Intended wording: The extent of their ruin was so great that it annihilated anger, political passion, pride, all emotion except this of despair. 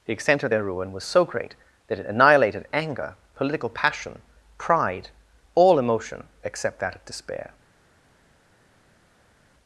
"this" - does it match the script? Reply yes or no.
no